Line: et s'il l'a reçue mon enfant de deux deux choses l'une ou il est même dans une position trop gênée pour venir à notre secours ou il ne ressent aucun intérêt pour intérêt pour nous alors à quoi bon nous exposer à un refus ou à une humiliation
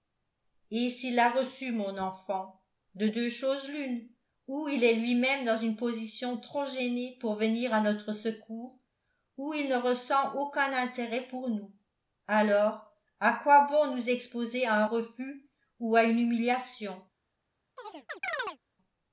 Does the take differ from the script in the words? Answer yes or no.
yes